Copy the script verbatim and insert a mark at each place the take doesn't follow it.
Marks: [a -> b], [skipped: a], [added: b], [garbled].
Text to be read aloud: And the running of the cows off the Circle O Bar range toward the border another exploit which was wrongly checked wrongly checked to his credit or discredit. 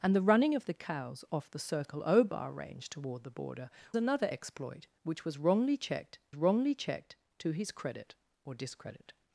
And the running of the cows off the Circle O Bar range toward the border another exploit which was wrongly checked wrongly checked to his credit or discredit.